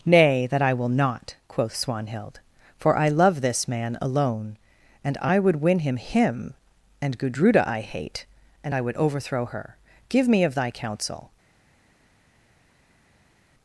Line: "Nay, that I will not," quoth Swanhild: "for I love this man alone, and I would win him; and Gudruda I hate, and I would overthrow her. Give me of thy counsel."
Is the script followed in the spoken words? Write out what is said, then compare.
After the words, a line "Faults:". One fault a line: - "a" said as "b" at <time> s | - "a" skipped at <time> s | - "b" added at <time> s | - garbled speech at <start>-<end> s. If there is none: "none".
"Nay, that I will not," quoth Swanhild: "for I love this man alone, and I would win him him; and Gudruda I hate, and I would overthrow her. Give me of thy counsel."
Faults:
- "him" added at 6.0 s